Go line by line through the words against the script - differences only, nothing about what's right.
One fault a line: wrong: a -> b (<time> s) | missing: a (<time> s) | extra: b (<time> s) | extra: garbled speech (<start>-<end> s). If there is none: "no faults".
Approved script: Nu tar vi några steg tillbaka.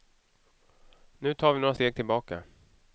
no faults